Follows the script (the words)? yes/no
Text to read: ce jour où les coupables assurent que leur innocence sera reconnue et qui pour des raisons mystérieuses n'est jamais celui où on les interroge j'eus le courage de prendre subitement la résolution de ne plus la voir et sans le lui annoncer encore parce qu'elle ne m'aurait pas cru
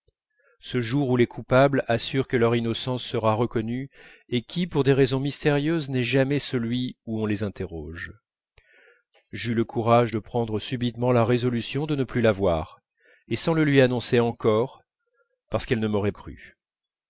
no